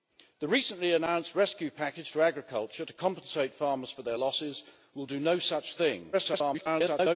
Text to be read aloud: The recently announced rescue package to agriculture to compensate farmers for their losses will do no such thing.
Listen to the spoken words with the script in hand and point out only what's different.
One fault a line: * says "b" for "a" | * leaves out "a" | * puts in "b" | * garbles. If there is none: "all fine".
* garbles